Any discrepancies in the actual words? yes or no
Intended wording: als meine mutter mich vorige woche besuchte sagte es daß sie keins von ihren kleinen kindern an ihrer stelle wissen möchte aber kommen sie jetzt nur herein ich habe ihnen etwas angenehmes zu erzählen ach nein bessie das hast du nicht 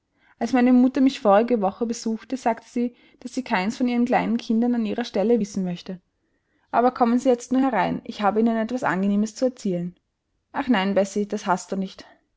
yes